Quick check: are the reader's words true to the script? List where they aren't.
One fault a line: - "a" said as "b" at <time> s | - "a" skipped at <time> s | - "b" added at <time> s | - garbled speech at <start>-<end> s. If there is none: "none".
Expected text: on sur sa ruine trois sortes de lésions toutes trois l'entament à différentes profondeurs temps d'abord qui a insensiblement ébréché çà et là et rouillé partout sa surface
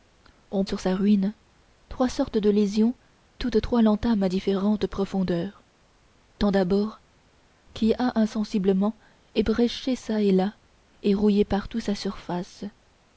none